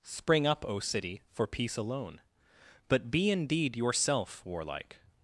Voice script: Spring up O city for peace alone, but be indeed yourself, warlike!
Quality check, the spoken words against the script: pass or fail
pass